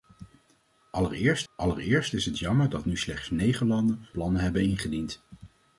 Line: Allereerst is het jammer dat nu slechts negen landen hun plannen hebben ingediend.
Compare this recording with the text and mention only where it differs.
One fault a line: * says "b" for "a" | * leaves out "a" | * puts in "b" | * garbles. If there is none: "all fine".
* puts in "allereerst"
* leaves out "hun"